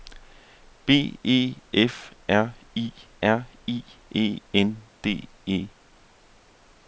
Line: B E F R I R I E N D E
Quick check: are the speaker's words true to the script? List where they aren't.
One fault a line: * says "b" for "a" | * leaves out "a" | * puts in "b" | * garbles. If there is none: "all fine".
all fine